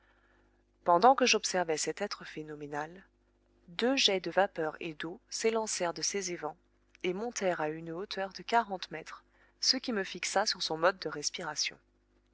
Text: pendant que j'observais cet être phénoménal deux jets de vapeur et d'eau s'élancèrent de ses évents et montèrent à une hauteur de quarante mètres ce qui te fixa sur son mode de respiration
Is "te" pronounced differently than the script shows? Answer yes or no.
yes